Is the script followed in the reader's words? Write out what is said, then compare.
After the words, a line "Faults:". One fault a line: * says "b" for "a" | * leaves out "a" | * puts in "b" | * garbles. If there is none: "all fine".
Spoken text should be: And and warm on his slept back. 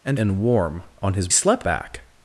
And and warm on his slept back.
Faults:
all fine